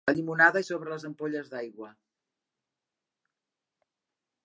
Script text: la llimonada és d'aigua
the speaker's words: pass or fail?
fail